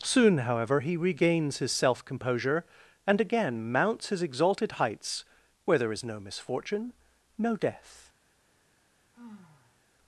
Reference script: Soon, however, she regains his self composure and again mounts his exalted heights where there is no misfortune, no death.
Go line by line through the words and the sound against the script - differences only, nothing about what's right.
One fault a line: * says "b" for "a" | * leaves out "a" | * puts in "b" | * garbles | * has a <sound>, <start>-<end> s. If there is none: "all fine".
* says "he" for "she"
* has a sigh, 9.1-9.8 s